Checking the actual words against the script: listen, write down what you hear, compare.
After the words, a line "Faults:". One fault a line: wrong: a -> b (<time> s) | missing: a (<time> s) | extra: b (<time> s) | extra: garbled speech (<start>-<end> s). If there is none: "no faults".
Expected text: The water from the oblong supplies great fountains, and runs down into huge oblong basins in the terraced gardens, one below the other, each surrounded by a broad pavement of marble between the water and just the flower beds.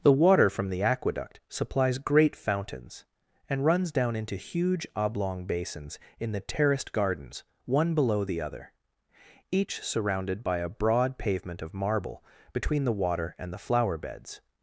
The water from the aqueduct supplies great fountains, and runs down into huge oblong basins in the terraced gardens, one below the other, each surrounded by a broad pavement of marble between the water and the flower beds.
Faults:
wrong: oblong -> aqueduct (0.8 s)
missing: just (13.5 s)